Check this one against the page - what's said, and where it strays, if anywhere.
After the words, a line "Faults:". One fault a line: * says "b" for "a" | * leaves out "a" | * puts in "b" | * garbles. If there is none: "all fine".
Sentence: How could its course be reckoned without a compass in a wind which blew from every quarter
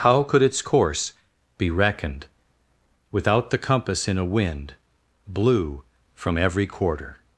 How could its course be reckoned without the compass in a wind blew from every quarter
Faults:
* says "the" for "a"
* leaves out "which"